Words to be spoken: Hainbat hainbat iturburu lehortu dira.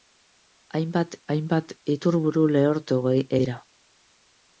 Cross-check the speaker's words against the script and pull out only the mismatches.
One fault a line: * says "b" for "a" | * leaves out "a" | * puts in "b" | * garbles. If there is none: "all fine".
all fine